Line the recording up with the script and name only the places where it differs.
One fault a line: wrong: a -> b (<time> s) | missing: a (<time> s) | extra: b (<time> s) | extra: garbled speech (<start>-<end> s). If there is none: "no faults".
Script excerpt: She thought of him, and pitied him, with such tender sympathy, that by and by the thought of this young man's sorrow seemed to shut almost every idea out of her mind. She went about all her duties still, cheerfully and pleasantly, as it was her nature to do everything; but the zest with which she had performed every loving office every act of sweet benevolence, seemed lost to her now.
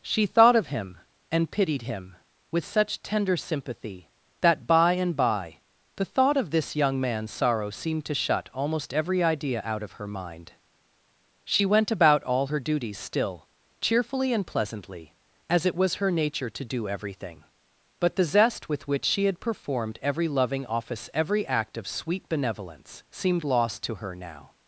no faults